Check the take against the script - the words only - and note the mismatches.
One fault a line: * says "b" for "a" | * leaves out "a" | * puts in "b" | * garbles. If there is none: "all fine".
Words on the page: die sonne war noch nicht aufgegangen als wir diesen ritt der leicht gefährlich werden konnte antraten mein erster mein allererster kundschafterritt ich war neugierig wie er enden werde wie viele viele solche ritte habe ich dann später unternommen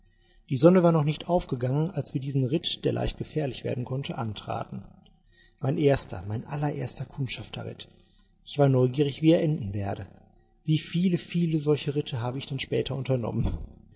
all fine